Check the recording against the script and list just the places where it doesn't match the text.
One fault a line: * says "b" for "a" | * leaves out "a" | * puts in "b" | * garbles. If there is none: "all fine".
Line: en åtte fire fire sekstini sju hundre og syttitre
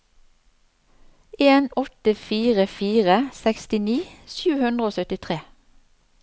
all fine